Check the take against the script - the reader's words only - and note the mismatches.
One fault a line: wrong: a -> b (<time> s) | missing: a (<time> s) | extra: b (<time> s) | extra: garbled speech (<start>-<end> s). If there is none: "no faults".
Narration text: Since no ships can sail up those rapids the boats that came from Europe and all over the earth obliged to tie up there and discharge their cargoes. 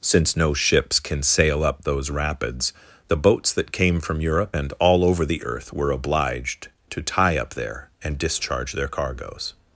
extra: were (5.7 s)